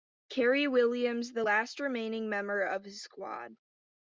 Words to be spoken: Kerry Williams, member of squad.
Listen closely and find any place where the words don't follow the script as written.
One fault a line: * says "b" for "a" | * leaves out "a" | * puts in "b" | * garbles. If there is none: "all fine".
* puts in "the last remaining"
* puts in "his"